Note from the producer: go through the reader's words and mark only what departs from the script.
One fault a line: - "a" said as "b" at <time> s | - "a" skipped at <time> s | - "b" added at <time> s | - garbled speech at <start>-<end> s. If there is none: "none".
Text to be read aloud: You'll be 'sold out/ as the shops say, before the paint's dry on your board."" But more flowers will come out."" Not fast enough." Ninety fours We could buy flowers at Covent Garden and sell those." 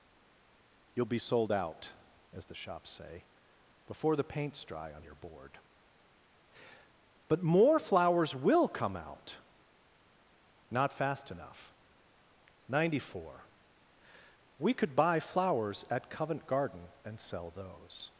- "fours" said as "four" at 13.1 s